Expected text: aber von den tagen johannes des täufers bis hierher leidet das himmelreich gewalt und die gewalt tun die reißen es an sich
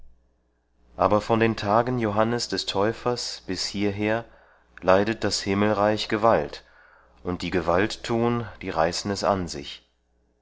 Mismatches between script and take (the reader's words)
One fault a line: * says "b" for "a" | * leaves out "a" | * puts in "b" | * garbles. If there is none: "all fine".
all fine